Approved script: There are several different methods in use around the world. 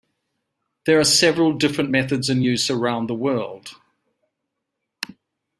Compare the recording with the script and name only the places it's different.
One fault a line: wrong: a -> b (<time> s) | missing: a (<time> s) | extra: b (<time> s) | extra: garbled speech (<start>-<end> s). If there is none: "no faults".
no faults